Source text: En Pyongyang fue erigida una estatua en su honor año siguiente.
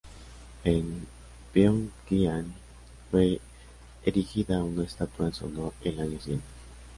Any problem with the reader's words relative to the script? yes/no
yes